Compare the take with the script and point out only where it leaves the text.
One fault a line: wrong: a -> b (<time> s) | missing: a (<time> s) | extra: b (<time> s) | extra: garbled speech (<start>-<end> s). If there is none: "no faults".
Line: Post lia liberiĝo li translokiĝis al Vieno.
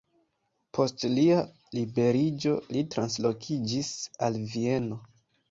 no faults